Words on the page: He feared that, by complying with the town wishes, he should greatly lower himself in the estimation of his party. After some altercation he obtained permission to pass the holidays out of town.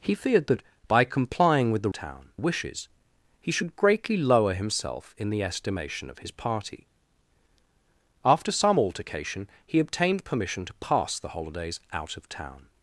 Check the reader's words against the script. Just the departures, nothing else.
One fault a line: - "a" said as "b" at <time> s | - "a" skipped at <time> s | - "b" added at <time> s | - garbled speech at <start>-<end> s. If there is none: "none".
none